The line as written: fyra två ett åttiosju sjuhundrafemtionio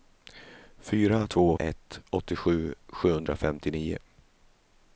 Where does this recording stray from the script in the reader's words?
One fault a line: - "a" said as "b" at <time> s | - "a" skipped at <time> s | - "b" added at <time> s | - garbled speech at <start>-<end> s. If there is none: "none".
none